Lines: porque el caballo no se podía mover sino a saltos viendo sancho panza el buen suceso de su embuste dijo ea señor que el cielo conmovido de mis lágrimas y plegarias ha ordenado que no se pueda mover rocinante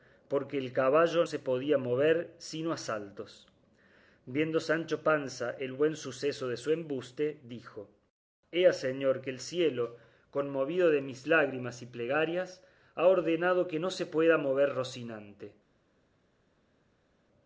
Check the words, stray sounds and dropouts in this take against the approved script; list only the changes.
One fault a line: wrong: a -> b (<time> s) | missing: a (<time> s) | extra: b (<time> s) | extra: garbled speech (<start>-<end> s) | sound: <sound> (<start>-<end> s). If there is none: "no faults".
missing: no (1.2 s)